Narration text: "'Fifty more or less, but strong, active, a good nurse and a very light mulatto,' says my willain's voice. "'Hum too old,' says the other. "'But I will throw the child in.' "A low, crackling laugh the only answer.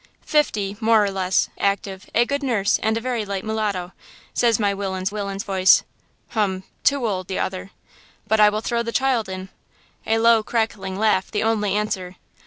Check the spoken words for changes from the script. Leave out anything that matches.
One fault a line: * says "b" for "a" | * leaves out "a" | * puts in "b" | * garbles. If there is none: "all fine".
* leaves out "but strong"
* puts in "willain's"
* leaves out "says"